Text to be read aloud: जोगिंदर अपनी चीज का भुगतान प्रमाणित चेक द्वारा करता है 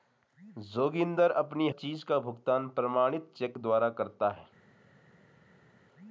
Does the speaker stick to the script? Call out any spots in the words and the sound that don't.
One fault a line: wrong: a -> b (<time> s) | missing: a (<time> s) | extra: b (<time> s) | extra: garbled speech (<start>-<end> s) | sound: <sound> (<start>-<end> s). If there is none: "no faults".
no faults